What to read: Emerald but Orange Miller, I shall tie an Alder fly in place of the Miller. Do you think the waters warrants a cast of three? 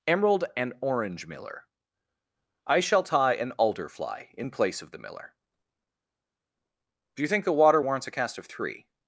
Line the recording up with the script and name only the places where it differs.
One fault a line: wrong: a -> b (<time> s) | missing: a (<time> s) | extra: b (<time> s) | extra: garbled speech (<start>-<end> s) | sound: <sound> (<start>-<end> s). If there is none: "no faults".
wrong: but -> and (0.6 s)
wrong: waters -> water (7.5 s)